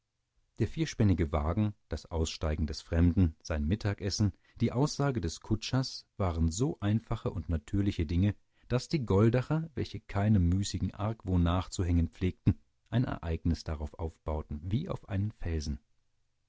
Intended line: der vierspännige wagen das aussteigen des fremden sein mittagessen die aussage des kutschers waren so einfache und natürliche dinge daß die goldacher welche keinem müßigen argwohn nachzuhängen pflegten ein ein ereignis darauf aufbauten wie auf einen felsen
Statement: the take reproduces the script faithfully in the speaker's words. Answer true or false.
false